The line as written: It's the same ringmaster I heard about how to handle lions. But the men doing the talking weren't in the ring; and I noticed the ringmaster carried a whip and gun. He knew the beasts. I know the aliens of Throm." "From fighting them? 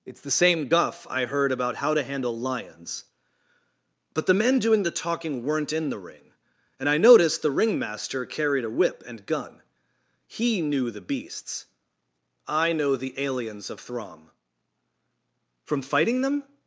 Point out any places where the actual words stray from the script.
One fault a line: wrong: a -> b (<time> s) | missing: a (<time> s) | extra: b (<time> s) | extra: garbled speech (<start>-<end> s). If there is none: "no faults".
wrong: ringmaster -> guff (0.7 s)